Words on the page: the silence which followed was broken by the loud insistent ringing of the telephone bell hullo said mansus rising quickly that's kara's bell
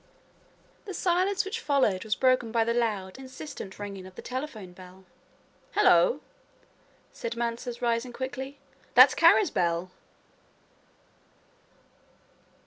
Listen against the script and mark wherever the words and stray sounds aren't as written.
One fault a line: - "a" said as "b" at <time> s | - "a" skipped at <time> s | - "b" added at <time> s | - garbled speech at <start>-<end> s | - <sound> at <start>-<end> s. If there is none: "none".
none